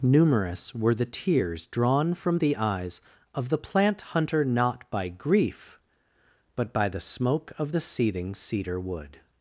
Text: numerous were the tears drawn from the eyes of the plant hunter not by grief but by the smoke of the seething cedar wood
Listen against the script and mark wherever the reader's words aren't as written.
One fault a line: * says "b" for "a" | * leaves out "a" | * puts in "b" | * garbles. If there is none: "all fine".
all fine